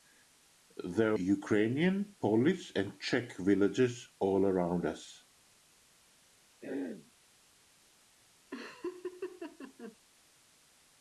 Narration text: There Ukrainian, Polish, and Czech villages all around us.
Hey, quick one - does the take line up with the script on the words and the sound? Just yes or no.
no